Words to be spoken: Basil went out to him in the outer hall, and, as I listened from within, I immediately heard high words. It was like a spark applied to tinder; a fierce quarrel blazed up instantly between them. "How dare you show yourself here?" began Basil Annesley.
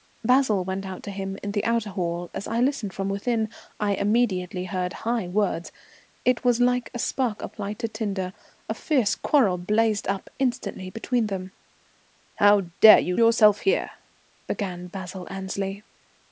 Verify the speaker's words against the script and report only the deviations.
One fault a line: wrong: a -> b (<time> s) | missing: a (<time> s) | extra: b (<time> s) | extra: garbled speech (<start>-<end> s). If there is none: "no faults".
missing: and (2.3 s)
missing: show (13.2 s)